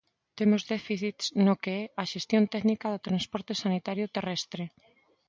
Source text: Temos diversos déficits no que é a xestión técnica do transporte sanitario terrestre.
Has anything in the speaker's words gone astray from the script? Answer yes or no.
yes